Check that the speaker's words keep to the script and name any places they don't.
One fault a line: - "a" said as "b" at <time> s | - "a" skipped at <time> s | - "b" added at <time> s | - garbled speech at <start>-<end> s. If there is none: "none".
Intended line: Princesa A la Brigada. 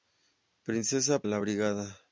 none